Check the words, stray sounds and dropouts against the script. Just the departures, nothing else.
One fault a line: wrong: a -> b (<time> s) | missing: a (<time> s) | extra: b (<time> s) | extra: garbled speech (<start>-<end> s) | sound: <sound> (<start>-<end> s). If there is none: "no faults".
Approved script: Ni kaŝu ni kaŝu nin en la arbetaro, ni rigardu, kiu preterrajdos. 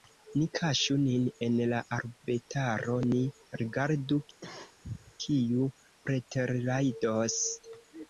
missing: ni kaŝu (0.9 s)
sound: cough (4.4-5.1 s)